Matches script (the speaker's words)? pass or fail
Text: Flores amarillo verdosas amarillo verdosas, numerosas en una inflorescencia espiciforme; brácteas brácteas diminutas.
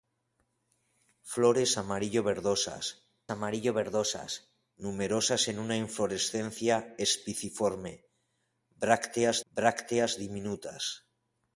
pass